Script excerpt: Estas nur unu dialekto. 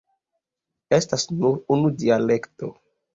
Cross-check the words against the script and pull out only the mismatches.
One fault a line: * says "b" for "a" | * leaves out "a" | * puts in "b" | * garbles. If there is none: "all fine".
all fine